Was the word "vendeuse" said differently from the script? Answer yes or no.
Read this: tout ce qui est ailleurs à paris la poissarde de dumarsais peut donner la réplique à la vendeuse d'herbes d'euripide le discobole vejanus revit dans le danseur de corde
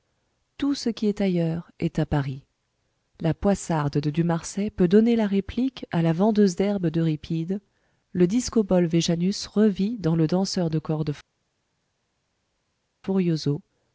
no